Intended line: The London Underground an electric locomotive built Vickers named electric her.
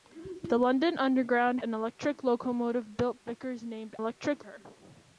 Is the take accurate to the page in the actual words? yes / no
yes